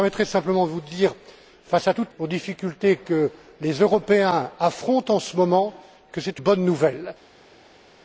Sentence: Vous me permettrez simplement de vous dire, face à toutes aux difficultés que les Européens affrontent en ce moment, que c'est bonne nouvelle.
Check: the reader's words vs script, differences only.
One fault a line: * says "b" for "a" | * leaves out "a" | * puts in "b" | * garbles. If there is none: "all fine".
all fine